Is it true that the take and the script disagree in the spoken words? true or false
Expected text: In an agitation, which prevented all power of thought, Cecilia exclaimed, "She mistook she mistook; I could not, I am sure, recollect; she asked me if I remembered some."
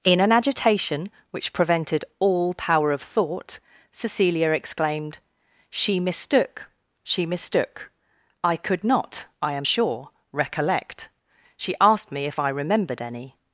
true